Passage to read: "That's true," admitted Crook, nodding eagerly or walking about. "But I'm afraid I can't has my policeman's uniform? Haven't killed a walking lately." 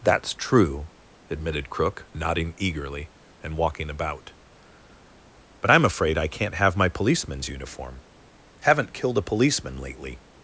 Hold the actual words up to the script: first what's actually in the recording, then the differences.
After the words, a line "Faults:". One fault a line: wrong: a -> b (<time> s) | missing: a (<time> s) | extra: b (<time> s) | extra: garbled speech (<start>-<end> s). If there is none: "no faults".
"That's true," admitted Crook, nodding eagerly and walking about. "But I'm afraid I can't have my policeman's uniform? Haven't killed a policeman lately."
Faults:
wrong: or -> and (3.4 s)
wrong: has -> have (6.6 s)
wrong: walking -> policeman (9.2 s)